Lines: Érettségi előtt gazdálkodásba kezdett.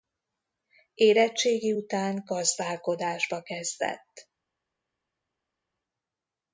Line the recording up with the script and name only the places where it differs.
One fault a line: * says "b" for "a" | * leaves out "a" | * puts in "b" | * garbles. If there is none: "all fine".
* says "után" for "előtt"